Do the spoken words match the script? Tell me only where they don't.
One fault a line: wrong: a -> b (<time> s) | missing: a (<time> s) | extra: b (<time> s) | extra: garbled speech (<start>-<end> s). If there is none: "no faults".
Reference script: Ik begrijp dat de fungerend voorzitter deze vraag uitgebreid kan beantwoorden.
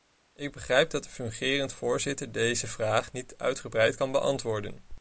extra: niet (3.1 s)